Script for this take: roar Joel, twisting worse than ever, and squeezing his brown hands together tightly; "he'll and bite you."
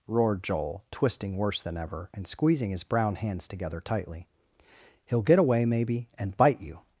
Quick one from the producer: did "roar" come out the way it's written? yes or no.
no